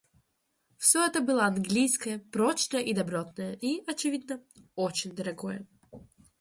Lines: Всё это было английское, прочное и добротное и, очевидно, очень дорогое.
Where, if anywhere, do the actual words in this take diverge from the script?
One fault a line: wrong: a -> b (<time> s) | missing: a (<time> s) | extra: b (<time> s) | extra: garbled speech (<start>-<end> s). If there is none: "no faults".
no faults